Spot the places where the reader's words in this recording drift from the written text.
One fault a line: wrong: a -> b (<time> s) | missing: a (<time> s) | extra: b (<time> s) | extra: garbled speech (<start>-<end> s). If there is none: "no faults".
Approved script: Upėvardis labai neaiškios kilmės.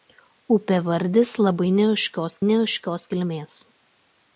extra: neaiškios (2.5 s)